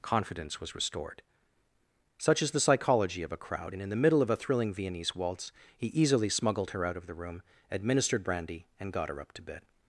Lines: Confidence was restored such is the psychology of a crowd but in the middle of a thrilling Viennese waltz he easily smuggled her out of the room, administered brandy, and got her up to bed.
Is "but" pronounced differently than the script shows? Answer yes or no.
yes